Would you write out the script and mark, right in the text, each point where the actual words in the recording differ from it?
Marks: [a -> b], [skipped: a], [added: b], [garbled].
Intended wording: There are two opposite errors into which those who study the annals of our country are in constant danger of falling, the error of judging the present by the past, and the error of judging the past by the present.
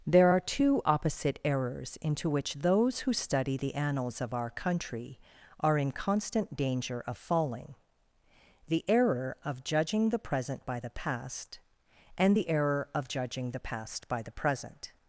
There are two opposite errors into which those who study the annals of our country are in constant danger of falling, the error of judging the present by the past, and the error of judging the past by the present.